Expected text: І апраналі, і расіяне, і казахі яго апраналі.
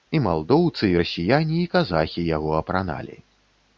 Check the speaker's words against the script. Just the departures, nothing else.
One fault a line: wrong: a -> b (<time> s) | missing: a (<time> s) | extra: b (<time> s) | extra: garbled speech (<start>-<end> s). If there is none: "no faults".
wrong: апраналі -> малдоўцы (0.3 s)